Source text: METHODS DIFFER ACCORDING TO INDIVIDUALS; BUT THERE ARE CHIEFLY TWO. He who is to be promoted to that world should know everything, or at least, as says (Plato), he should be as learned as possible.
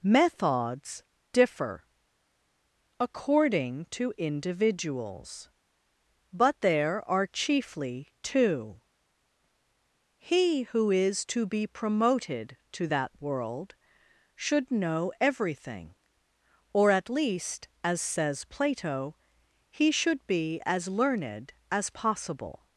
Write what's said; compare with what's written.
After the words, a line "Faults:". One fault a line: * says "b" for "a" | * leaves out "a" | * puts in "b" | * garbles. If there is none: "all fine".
METHODS DIFFER ACCORDING TO INDIVIDUALS; BUT THERE ARE CHIEFLY TWO. He who is to be promoted to that world should know everything, or at least, as says (Plato), he should be as learned as possible.
Faults:
all fine